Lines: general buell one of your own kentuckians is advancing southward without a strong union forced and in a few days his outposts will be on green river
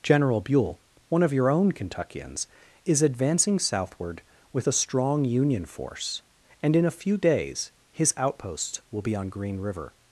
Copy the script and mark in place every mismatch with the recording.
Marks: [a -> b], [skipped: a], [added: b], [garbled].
general buell one of your own kentuckians is advancing southward [without -> with] a strong union [forced -> force] and in a few days his outposts will be on green river